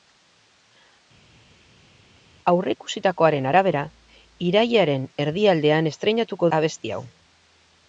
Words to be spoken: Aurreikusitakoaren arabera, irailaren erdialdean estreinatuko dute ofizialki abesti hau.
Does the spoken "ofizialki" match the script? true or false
false